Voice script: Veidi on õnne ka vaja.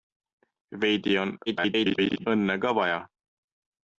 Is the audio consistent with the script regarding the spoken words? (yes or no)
no